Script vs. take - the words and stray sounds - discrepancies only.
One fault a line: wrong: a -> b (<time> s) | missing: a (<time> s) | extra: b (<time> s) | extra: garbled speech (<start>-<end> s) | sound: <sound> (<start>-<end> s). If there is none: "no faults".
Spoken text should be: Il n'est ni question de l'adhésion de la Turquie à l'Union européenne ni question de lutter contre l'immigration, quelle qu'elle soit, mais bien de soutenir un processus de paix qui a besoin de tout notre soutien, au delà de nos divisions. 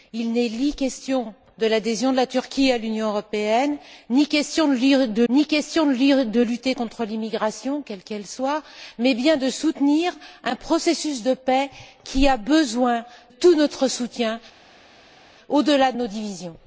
extra: ni question de (5.3 s)
missing: de (13.0 s)